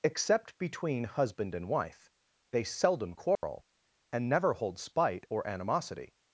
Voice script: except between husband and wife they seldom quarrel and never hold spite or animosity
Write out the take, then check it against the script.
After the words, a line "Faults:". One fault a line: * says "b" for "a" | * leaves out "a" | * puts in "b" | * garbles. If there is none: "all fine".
except between husband and wife they seldom quarrel and never hold spite or animosity
Faults:
all fine